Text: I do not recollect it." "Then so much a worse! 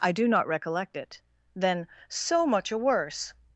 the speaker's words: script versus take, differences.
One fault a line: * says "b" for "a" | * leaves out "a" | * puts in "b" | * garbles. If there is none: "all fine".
all fine